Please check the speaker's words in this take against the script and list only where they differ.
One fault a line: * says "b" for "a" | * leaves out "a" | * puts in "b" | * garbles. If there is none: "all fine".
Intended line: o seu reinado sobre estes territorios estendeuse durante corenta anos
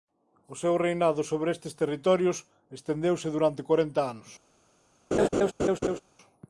all fine